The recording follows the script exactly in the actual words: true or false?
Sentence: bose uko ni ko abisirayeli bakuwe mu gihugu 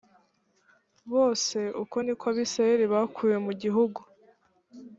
true